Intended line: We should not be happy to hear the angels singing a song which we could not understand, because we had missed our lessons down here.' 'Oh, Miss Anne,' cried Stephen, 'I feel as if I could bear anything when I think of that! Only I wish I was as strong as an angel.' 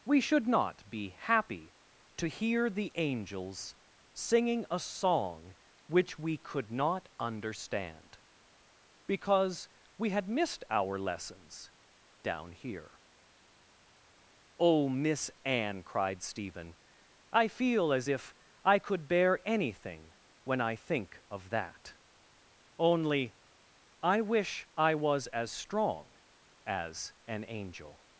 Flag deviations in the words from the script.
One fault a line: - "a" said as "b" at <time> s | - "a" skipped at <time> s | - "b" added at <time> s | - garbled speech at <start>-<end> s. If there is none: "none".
none